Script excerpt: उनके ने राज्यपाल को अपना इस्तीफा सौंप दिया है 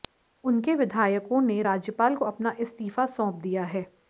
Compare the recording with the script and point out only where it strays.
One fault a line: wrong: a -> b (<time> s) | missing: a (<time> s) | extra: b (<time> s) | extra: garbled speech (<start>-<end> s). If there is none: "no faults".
extra: विधायकों (0.8 s)